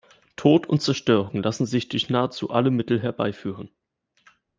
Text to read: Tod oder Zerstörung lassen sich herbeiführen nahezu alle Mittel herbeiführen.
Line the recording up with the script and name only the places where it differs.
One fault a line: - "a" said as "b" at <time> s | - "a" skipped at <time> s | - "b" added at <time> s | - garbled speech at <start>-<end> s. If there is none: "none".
- "oder" said as "und" at 0.7 s
- "herbeiführen" said as "durch" at 1.9 s